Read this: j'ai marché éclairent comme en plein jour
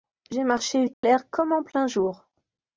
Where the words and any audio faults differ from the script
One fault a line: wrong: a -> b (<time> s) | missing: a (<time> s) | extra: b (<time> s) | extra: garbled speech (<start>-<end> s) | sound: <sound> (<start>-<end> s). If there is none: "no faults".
sound: dropout (0.9-1.0 s)